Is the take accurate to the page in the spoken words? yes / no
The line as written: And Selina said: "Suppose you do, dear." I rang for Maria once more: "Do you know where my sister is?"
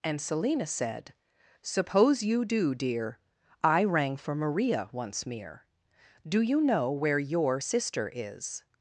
no